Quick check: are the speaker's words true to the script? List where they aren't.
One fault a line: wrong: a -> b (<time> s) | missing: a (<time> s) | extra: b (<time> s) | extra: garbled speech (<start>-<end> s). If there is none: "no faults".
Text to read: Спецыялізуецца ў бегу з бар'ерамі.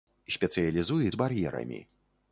missing: ў бегу (1.1 s)